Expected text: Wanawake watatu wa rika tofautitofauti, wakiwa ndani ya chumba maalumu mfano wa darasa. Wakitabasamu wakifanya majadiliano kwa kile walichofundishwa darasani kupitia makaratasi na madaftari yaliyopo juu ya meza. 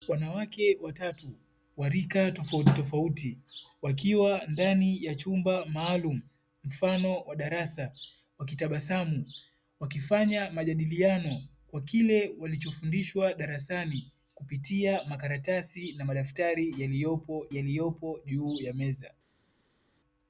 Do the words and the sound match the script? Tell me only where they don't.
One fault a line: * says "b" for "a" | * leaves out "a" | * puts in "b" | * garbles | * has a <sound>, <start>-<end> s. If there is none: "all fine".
* puts in "yaliyopo"